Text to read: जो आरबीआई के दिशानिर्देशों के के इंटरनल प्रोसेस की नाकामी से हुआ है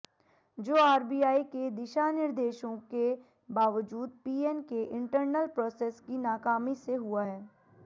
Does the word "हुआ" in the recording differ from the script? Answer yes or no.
no